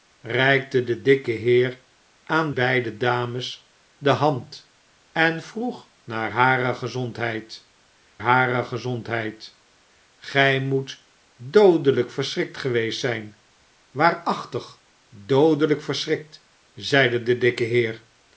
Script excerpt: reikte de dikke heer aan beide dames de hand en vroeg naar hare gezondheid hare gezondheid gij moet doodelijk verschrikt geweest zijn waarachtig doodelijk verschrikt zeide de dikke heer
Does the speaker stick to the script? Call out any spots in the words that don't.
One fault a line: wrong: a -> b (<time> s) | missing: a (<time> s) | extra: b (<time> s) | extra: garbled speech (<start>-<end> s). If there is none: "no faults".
no faults